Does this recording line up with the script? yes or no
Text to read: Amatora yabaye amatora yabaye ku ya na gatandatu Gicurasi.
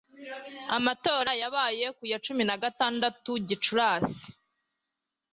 no